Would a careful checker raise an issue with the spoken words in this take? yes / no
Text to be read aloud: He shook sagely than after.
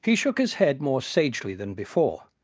yes